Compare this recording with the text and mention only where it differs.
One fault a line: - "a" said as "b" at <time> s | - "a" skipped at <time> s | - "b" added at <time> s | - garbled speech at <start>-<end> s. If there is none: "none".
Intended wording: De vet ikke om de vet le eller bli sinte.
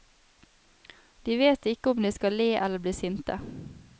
- "vet" said as "skal" at 2.1 s